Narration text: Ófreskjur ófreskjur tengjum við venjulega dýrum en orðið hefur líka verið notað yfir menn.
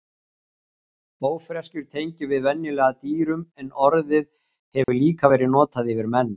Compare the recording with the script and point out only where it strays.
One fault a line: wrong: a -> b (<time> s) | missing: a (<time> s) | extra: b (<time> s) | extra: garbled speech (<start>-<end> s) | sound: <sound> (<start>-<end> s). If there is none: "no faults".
missing: ófreskjur (1.9 s)
sound: dropout (4.8-4.9 s)